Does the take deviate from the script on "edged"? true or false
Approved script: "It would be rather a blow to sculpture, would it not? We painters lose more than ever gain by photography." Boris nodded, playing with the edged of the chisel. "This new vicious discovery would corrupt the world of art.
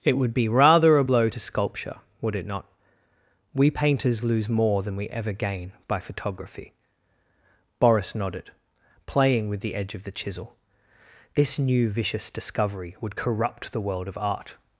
true